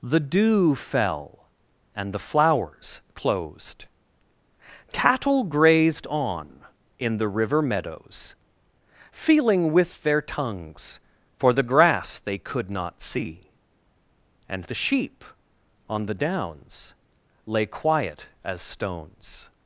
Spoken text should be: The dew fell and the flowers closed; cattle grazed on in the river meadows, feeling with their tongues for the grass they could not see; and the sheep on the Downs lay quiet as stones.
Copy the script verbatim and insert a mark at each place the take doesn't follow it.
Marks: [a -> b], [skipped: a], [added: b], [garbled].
The dew fell and the flowers closed; cattle grazed on in the river meadows, feeling with their tongues for the grass they could not see; and the sheep on the Downs lay quiet as stones.